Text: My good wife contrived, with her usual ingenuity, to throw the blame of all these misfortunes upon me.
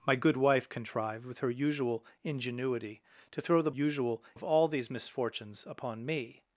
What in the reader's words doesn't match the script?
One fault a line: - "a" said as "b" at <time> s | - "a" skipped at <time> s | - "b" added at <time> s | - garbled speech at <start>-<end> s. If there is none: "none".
- "blame" said as "usual" at 3.7 s